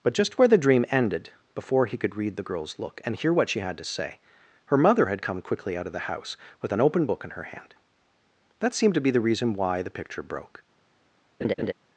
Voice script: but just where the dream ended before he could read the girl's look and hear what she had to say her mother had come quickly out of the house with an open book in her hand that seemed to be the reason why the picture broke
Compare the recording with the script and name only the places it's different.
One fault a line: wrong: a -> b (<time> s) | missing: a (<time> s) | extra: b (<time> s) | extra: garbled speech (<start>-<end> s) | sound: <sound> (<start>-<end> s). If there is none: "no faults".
sound: laugh (11.4-11.7 s)